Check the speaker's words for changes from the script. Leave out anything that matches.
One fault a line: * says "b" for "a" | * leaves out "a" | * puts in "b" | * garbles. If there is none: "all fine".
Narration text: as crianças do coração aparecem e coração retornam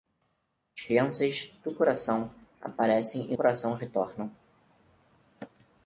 all fine